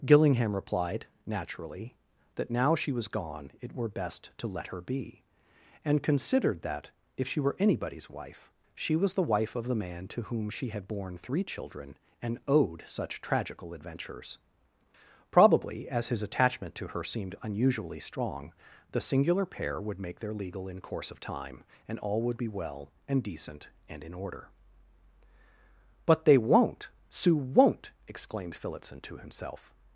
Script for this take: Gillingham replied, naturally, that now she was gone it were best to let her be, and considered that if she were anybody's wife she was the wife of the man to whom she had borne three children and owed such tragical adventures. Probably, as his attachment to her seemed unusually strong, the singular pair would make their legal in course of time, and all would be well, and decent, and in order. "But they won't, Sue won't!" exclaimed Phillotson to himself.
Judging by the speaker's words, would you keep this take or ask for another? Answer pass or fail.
pass